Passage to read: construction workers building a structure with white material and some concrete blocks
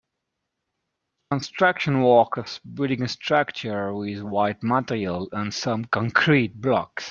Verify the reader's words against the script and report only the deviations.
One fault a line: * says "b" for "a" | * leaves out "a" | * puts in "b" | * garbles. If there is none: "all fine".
all fine